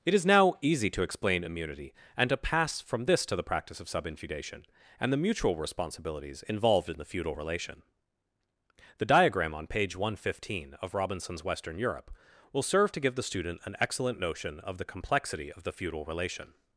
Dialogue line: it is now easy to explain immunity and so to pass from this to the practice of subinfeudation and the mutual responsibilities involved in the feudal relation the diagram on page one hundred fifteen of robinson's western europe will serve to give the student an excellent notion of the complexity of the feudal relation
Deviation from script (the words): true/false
true